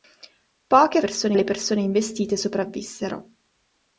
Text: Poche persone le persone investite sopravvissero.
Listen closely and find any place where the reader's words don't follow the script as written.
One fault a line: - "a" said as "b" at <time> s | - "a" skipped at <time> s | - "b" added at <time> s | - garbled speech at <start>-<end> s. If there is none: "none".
none